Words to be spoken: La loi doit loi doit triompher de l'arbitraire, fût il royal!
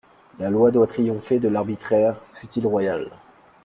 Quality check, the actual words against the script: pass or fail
fail